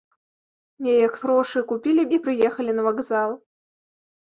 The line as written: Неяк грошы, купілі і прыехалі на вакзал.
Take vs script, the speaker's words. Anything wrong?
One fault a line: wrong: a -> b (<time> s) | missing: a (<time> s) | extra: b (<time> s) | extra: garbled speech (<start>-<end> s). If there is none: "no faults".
no faults